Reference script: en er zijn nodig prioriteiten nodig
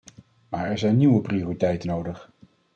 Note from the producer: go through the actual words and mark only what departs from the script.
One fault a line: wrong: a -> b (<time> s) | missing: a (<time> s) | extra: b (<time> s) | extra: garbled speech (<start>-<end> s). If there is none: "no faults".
wrong: en -> maar (0.5 s)
wrong: nodig -> nieuwe (1.0 s)